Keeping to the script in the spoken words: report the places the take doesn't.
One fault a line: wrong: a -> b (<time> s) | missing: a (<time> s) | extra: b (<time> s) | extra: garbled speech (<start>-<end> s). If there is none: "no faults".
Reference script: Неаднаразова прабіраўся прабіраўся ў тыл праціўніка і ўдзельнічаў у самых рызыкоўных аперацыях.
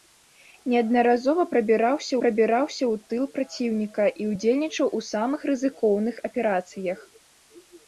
no faults